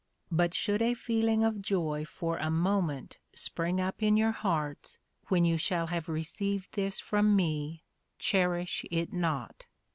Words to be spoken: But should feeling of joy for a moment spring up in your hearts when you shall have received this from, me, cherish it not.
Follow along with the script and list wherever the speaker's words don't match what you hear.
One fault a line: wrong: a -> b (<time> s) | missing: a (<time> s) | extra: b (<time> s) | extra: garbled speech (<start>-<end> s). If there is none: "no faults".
extra: a (0.8 s)